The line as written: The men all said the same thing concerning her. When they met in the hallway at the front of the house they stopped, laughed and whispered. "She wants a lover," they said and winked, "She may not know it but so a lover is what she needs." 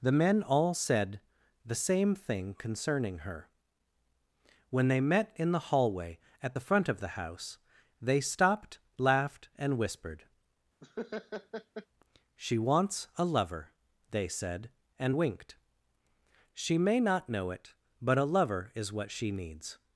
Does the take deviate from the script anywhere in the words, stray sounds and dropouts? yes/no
yes